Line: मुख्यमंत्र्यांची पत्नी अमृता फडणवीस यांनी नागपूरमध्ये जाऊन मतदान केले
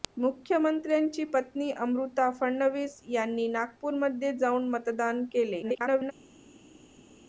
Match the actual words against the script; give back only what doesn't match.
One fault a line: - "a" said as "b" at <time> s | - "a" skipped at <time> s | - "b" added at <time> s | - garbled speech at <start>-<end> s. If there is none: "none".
- garbled speech at 5.6-6.1 s